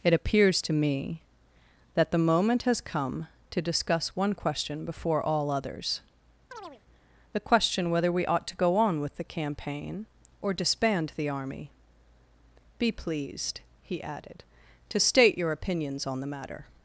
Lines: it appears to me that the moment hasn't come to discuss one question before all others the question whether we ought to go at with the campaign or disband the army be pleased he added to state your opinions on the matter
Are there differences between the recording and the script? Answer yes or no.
yes